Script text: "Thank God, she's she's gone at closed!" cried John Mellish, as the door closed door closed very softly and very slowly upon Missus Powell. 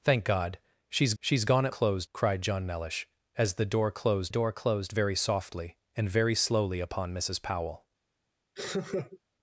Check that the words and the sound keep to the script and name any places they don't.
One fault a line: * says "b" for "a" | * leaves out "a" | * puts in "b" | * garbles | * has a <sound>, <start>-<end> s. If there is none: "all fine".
* has a laugh, 8.6-9.2 s